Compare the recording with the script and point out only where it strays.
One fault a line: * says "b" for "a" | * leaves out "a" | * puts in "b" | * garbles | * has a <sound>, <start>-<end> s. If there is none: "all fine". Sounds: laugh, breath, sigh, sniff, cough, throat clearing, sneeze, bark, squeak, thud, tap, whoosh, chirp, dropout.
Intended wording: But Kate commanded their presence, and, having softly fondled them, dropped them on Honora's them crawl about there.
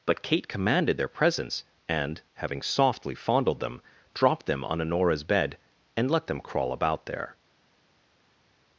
* puts in "bed and let"